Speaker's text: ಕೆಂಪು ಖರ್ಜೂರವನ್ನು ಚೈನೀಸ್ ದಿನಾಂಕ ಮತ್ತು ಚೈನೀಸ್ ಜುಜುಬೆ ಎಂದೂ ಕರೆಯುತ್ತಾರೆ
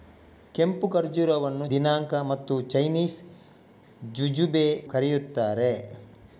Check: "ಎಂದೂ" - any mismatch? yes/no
yes